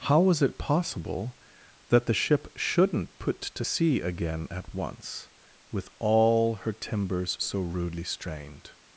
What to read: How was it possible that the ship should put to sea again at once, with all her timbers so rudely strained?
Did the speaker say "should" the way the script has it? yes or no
no